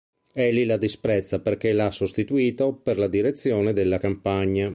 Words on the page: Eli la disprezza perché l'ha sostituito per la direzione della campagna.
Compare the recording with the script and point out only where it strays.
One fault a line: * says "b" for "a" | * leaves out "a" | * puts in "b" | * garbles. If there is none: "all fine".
all fine